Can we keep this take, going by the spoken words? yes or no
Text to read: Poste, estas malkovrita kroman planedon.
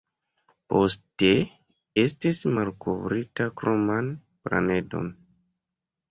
no